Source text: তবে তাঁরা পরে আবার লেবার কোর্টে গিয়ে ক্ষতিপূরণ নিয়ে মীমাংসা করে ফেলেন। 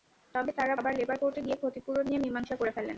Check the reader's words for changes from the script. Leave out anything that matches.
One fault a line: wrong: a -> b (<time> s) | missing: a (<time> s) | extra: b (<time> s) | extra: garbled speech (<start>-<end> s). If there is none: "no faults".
missing: পরে (0.8 s)